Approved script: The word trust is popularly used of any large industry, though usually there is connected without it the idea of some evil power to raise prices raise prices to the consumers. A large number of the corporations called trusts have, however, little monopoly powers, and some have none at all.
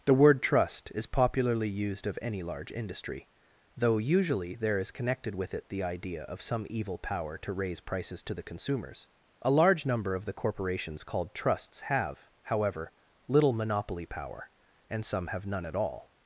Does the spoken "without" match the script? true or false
false